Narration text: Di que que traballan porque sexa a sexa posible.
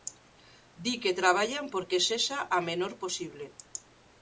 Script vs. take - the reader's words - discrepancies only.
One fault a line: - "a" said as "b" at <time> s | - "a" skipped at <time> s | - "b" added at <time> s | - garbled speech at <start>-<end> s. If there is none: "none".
- "que" skipped at 1.2 s
- "sexa" said as "menor" at 2.7 s